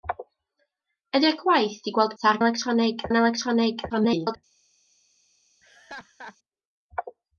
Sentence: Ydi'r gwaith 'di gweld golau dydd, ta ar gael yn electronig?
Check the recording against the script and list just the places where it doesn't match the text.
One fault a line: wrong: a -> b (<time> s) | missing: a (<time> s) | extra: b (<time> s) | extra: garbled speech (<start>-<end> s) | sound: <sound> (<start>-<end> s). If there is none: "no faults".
missing: golau dydd (2.1 s)
wrong: gael -> electronig (2.4 s)
extra: garbled speech (3.9-4.4 s)
sound: laugh (5.6-6.4 s)